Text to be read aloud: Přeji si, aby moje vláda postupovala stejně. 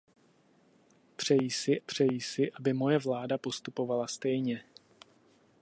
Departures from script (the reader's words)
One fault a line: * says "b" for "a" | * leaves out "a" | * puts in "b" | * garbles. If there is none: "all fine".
* puts in "přeji si"